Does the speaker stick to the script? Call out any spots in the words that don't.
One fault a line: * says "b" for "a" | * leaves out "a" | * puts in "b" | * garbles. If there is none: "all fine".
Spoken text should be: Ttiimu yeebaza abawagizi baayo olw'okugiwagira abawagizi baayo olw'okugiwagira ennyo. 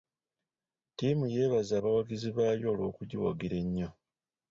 * leaves out "abawagizi baayo olw'okugiwagira"